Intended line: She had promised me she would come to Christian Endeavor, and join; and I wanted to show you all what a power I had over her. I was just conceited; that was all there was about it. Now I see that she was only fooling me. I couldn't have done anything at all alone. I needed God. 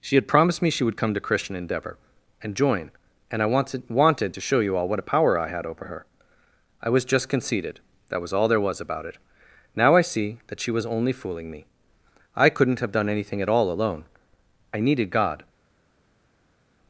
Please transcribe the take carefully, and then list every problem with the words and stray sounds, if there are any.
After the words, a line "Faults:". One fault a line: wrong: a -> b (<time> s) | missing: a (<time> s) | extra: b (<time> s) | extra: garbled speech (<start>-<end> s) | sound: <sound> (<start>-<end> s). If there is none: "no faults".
She had promised me she would come to Christian Endeavor, and join; and I wanted wanted to show you all what a power I had over her. I was just conceited; that was all there was about it. Now I see that she was only fooling me. I couldn't have done anything at all alone. I needed God.
Faults:
extra: wanted (3.9 s)